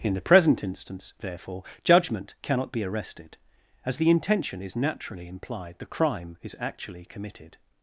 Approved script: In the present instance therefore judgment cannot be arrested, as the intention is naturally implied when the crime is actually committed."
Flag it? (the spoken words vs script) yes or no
yes